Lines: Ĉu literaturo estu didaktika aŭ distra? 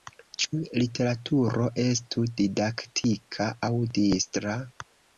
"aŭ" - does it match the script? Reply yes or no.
yes